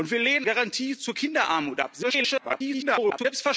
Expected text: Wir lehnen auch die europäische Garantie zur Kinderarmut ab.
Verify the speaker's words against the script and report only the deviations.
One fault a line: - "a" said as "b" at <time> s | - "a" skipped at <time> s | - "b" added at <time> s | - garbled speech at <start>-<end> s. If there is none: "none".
- "auch die europäische" skipped at 0.5 s
- garbled speech at 2.0-3.3 s